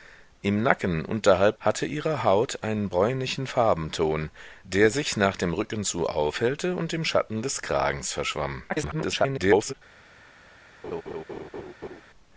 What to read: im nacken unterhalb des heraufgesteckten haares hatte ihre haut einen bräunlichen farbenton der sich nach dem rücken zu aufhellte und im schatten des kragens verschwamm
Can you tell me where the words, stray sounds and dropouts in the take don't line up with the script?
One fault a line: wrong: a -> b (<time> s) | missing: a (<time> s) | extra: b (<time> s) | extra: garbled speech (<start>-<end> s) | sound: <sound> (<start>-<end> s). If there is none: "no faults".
missing: des heraufgesteckten haares (1.6 s)
extra: garbled speech (8.7-9.7 s)
sound: laugh (10.8-12.0 s)